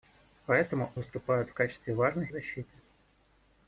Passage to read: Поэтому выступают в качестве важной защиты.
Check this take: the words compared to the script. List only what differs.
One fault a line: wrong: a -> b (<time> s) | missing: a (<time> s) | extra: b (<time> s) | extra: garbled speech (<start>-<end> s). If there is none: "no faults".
no faults